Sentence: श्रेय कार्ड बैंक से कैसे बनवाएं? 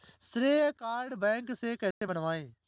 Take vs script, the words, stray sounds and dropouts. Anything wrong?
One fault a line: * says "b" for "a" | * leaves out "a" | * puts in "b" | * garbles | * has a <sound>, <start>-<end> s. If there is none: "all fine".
* has a dropout, 1.9-2.0 s